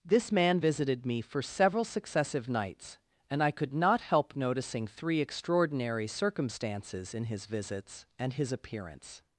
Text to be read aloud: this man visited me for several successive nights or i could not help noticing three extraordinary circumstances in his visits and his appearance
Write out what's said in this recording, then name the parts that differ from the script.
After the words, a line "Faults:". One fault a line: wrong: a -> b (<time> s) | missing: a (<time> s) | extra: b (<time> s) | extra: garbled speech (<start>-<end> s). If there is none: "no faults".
this man visited me for several successive nights and i could not help noticing three extraordinary circumstances in his visits and his appearance
Faults:
wrong: or -> and (3.3 s)